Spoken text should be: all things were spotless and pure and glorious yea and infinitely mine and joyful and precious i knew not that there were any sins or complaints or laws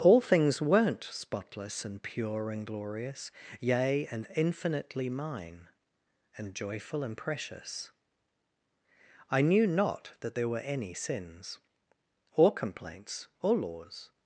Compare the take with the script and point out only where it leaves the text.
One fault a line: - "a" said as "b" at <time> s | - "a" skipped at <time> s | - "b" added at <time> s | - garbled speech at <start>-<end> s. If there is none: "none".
- "were" said as "weren't" at 0.6 s